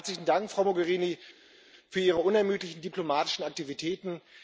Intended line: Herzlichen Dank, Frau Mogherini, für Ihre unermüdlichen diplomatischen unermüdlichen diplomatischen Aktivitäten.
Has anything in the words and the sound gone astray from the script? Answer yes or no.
yes